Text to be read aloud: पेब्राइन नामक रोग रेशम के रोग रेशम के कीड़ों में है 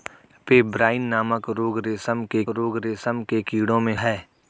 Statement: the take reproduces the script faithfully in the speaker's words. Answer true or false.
true